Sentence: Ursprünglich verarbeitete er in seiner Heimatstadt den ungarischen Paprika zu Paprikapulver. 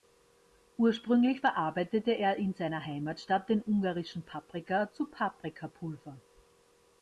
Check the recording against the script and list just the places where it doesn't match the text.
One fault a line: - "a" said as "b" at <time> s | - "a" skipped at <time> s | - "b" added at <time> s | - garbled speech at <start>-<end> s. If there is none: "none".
none